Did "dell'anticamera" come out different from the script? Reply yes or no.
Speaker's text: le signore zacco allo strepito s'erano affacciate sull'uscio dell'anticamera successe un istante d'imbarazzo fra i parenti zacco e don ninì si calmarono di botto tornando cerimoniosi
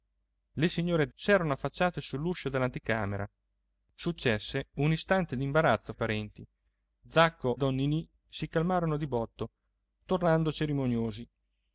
no